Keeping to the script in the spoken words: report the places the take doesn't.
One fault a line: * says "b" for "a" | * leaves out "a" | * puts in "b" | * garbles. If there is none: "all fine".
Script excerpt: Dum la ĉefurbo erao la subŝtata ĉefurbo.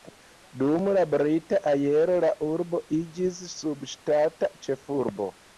* says "brita" for "ĉefurbo"
* puts in "urbo iĝis"